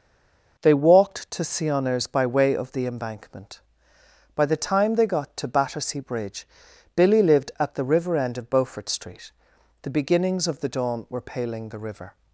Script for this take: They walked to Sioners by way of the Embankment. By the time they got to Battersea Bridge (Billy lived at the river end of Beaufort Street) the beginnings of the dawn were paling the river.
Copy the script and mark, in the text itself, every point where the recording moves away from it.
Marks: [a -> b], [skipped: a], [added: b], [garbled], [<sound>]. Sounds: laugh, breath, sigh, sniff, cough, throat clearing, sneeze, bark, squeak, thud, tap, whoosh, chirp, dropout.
They walked to Sioners by way of the Embankment. By the time they got to Battersea Bridge (Billy lived at the river end of Beaufort Street) the beginnings of the dawn were paling the river.